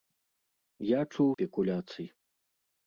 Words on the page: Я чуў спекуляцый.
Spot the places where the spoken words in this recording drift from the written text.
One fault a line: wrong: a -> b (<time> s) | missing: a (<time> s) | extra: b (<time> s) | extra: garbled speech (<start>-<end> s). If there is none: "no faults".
no faults